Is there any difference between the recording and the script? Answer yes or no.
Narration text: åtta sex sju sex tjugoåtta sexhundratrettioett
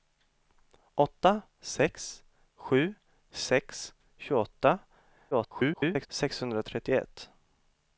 yes